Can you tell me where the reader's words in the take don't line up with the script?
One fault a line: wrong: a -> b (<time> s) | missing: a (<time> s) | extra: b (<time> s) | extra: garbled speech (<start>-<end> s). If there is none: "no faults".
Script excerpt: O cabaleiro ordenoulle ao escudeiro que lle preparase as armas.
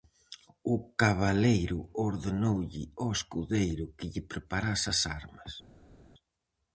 no faults